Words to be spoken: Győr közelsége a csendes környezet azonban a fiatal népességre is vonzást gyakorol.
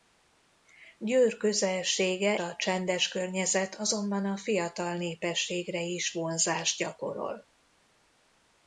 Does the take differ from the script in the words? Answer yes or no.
no